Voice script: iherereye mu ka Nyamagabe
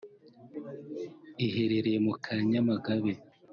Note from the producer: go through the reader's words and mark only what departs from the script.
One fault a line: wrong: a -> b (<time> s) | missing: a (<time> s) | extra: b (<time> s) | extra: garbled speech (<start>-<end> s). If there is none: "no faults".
no faults